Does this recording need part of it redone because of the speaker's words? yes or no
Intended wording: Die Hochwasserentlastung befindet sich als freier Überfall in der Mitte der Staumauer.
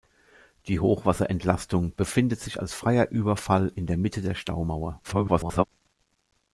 yes